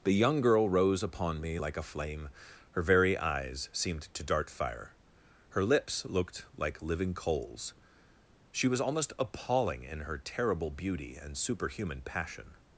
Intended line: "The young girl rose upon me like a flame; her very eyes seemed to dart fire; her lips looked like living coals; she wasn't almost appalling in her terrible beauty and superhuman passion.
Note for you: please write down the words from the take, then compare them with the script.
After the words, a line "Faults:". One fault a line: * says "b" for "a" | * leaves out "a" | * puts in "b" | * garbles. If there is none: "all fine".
"The young girl rose upon me like a flame; her very eyes seemed to dart fire; her lips looked like living coals; she was almost appalling in her terrible beauty and superhuman passion.
Faults:
* says "was" for "wasn't"